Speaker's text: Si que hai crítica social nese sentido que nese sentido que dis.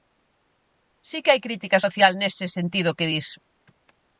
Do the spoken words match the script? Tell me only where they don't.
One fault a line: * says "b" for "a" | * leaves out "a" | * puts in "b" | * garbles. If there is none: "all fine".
* leaves out "nese sentido que"